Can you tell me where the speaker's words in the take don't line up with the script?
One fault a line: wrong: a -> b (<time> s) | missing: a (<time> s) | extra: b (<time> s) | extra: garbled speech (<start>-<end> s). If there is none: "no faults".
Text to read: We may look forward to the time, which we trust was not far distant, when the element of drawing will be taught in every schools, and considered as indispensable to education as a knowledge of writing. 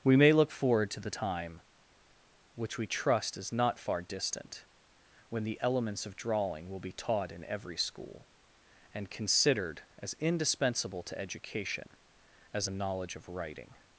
wrong: was -> is (3.4 s)
wrong: element -> elements (5.6 s)
wrong: schools -> school (7.8 s)